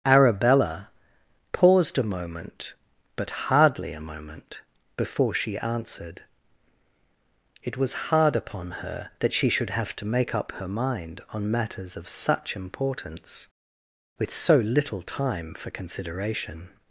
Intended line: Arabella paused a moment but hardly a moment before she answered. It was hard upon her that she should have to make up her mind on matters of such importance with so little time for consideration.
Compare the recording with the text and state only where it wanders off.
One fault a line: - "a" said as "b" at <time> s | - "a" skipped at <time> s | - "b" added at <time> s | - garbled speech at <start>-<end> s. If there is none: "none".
none